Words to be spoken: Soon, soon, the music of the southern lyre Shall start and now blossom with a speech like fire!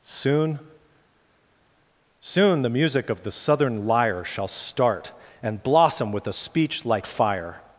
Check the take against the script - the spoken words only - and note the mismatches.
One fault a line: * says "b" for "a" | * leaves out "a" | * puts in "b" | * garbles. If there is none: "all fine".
* leaves out "now"